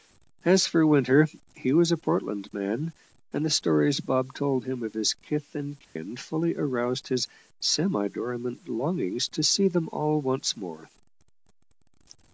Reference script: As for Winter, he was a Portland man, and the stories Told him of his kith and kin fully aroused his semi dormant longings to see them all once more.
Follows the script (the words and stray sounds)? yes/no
no